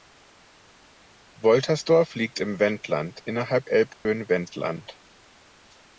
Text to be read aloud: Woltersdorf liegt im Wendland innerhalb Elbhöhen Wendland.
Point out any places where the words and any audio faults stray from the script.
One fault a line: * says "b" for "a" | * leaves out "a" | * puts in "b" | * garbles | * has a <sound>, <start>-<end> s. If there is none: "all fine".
* has a dropout, 3.9-4.1 s